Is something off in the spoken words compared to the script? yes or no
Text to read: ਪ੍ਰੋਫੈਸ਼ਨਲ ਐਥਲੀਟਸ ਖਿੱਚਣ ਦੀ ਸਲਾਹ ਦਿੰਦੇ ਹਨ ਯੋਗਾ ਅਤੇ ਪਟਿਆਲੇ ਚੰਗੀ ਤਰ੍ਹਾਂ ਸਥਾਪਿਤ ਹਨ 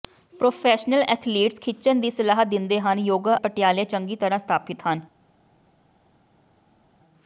yes